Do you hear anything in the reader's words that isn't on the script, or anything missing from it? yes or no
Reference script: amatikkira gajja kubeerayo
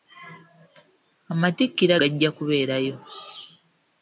no